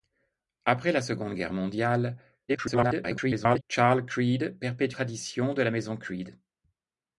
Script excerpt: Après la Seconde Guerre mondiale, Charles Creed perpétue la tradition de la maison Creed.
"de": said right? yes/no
yes